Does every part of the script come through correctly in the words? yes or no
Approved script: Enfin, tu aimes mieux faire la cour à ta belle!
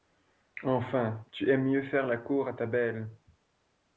yes